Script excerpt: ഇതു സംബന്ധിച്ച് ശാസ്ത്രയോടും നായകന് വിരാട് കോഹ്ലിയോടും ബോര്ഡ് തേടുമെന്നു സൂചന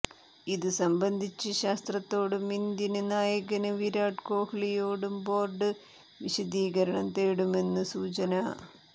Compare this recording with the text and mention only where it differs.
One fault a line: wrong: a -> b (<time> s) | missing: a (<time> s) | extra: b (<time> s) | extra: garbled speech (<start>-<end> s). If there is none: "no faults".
extra: ഇന്ത്യന് (2.5 s)
extra: വിശദീകരണം (6.2 s)